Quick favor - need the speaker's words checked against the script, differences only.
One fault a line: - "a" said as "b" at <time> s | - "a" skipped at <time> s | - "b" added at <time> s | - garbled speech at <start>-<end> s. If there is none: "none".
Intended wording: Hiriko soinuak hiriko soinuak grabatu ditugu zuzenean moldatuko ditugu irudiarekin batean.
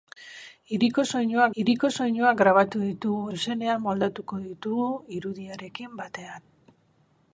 none